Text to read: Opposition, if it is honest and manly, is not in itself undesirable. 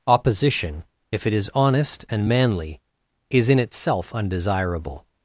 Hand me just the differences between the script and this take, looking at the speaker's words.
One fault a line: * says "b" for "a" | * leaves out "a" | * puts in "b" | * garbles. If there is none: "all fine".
* leaves out "not"